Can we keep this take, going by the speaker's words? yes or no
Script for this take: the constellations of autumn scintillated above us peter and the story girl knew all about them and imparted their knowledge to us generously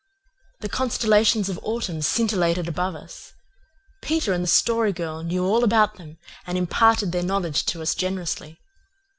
yes